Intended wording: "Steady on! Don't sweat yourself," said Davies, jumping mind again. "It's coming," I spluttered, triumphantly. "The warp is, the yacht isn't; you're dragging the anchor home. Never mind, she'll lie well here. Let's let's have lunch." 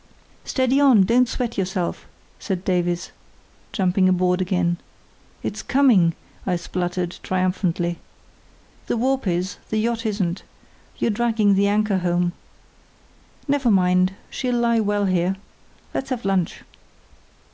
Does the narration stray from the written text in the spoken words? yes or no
yes